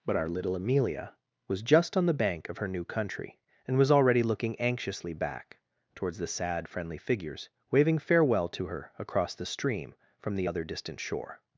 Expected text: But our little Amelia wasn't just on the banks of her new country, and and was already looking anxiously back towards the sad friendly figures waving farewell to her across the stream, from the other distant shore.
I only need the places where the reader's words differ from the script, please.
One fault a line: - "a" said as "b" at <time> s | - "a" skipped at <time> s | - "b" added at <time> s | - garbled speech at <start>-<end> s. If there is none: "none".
- "wasn't" said as "was" at 1.5 s
- "banks" said as "bank" at 2.1 s
- "and" skipped at 3.8 s